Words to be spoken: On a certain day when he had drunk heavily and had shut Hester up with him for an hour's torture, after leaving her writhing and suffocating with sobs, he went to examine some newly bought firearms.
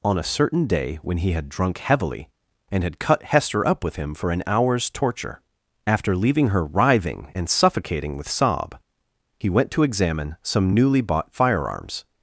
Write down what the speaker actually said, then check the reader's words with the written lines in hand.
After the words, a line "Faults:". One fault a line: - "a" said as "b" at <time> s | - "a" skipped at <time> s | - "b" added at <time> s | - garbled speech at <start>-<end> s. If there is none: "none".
On a certain day when he had drunk heavily and had cut Hester up with him for an hour's torture, after leaving her writhing and suffocating with sob, he went to examine some newly bought firearms.
Faults:
- "shut" said as "cut" at 3.0 s
- "sobs" said as "sob" at 8.3 s